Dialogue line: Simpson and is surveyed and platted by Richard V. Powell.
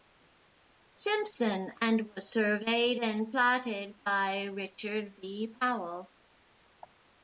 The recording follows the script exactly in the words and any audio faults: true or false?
false